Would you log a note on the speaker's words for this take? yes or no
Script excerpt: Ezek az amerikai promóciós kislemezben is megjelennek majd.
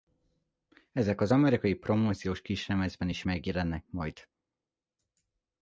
no